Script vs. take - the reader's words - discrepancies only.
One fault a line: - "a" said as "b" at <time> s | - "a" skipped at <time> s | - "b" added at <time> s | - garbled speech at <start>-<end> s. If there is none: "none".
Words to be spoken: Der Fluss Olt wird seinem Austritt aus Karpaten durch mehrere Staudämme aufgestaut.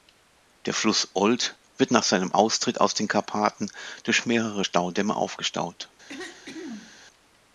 - "nach" added at 1.9 s
- "den" added at 2.9 s